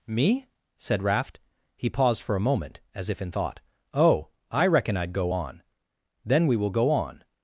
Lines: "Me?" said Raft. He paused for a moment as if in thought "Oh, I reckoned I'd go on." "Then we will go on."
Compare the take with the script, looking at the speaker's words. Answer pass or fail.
fail